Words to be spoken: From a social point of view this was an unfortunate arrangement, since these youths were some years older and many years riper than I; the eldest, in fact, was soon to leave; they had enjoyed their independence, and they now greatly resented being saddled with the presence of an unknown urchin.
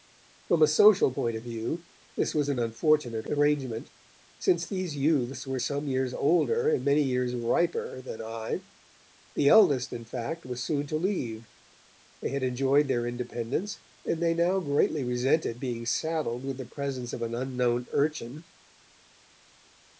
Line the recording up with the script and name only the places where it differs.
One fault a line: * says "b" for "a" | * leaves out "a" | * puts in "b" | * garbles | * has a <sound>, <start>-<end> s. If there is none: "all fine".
all fine